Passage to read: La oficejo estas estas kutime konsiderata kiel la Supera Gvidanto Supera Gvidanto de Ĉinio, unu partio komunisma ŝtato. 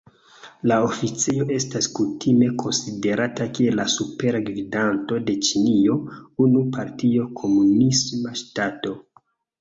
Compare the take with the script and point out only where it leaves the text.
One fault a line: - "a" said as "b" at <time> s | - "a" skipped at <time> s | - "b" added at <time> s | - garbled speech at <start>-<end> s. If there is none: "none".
- "estas" skipped at 1.9 s
- "Supera Gvidanto" skipped at 5.2 s